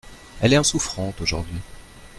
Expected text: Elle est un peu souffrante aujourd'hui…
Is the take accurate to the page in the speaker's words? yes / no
no